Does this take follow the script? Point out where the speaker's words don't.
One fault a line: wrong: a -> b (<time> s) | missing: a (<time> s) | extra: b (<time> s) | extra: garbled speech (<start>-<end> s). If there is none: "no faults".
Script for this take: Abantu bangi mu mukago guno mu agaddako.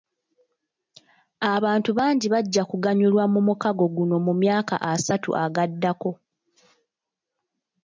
extra: bajja kuganyulwa (2.3 s)
extra: myaka asatu (4.4 s)